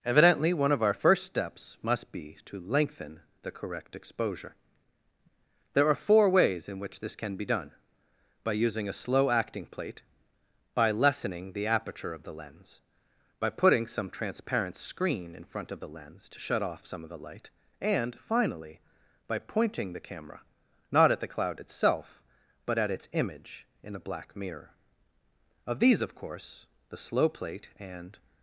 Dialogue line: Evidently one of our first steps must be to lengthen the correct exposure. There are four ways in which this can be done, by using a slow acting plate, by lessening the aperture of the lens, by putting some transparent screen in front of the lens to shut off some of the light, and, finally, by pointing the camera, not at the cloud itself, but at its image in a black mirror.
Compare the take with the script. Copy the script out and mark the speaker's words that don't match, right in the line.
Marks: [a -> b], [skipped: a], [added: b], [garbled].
Evidently one of our first steps must be to lengthen the correct exposure. There are four ways in which this can be done, by using a slow acting plate, by lessening the aperture of the lens, by putting some transparent screen in front of the lens to shut off some of the light, and, finally, by pointing the camera, not at the cloud itself, but at its image in a black mirror. [added: Of these of course the slow plate and]